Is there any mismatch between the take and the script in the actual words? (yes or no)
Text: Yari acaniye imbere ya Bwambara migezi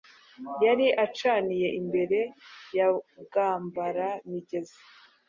no